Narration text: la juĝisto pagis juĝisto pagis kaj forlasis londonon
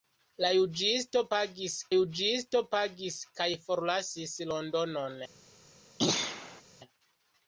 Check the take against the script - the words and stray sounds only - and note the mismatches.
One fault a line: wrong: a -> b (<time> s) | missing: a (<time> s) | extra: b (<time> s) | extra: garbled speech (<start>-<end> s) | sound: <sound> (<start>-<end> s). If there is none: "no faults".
sound: throat clearing (6.0-6.6 s)